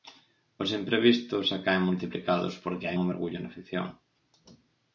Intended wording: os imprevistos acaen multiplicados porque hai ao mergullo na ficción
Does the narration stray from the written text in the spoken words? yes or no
no